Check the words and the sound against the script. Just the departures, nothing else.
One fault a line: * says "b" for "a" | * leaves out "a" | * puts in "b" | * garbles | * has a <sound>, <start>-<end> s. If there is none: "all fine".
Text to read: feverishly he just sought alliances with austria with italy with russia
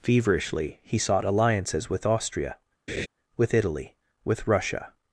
* leaves out "just"
* has a laugh, 2.9-3.1 s